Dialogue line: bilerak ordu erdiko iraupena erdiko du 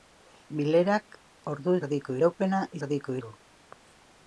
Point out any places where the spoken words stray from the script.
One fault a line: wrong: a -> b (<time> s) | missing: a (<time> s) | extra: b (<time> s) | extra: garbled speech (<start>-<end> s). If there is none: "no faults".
no faults